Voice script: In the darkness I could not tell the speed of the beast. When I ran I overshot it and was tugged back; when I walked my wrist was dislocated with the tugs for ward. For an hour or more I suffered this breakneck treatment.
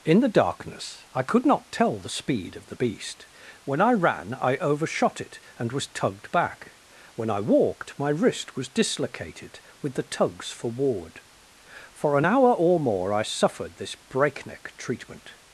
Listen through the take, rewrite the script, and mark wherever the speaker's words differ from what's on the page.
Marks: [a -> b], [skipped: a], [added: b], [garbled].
In the darkness I could not tell the speed of the beast. When I ran I overshot it and was tugged back; when I walked my wrist was dislocated with the tugs for ward. For an hour or more I suffered this breakneck treatment.